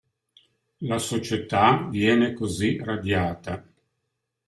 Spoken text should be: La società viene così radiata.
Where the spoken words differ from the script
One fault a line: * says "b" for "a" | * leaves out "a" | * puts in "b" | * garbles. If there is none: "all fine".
all fine